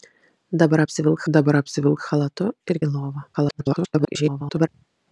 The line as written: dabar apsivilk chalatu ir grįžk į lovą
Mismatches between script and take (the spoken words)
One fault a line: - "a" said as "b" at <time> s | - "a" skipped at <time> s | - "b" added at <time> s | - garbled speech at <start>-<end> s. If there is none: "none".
- "dabar apsivilk" added at 1.4 s
- "grįžk" skipped at 2.8 s
- garbled speech at 3.3-4.7 s